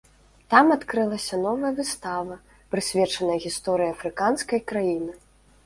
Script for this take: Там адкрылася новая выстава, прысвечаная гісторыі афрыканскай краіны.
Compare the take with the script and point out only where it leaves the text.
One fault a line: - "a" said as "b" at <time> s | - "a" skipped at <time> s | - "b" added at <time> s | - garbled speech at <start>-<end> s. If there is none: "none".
none